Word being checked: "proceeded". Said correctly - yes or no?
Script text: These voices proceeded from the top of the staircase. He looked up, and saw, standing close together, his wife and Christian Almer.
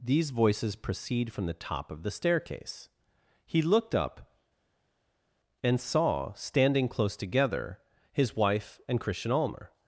no